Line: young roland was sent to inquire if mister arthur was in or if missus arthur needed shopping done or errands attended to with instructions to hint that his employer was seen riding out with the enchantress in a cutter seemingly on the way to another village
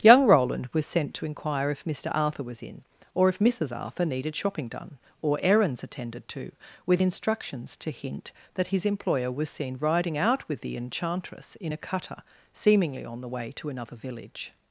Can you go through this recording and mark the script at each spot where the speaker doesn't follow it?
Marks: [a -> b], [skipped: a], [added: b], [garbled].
young roland was sent to inquire if mister arthur was in or if missus arthur needed shopping done or errands attended to with instructions to hint that his employer was seen riding out with the enchantress in a cutter seemingly on the way to another village